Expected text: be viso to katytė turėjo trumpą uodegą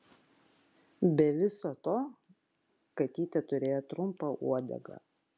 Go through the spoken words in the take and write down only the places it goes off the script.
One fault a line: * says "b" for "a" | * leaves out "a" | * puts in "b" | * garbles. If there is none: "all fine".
all fine